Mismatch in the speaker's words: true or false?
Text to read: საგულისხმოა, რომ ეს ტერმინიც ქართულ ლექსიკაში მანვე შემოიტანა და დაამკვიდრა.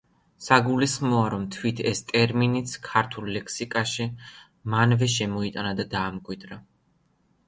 true